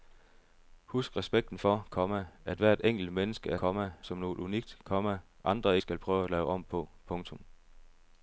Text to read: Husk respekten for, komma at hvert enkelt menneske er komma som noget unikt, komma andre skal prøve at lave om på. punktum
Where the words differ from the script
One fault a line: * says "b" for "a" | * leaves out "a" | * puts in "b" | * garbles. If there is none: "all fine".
all fine